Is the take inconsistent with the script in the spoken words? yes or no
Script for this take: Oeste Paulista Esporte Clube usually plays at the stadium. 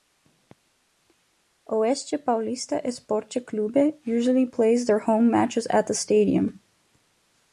yes